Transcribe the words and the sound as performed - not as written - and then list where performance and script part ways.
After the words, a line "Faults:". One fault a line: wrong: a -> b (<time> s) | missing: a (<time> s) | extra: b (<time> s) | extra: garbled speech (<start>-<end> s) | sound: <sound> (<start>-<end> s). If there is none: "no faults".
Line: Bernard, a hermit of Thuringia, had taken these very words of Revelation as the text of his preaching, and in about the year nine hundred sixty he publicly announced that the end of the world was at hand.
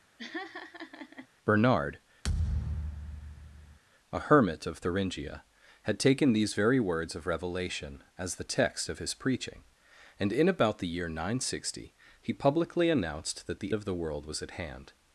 Bernard, a hermit of Thuringia, had taken these very words of Revelation as the text of his preaching, and in about the year nine hundred sixty he publicly announced that the of the world was at hand.
Faults:
sound: laugh (0.2-1.3 s)
sound: thud (2.2-3.8 s)
missing: end (13.7 s)